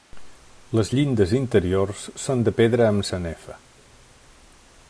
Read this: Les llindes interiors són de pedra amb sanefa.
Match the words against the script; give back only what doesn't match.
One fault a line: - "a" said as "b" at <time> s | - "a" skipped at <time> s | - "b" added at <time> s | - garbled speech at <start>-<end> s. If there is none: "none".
none